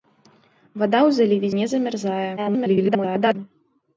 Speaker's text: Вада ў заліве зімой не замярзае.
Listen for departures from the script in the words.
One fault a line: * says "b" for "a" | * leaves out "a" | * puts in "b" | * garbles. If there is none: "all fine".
* leaves out "зімой"
* garbles